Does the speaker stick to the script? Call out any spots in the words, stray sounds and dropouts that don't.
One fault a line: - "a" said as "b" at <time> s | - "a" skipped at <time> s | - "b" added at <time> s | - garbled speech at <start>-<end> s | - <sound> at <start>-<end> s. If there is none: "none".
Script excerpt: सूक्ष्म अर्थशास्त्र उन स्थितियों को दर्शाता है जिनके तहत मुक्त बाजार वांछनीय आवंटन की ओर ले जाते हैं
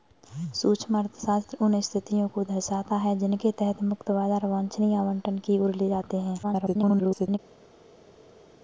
- garbled speech at 6.4-7.4 s